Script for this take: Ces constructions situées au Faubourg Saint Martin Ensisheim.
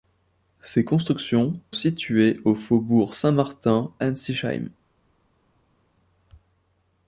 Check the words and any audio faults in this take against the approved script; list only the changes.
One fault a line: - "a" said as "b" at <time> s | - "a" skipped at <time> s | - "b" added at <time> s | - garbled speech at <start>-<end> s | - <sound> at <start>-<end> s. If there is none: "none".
none